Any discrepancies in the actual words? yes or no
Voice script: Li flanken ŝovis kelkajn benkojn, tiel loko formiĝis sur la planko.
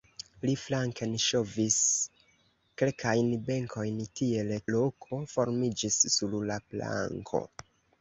no